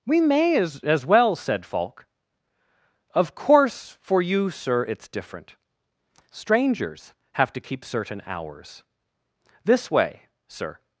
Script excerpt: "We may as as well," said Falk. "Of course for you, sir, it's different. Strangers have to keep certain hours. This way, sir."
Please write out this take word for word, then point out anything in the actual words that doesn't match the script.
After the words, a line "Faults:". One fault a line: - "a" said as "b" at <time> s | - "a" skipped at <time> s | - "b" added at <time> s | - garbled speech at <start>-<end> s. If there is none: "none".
"We may as as well," said Falk. "Of course for you, sir, it's different. Strangers have to keep certain hours. This way, sir."
Faults:
none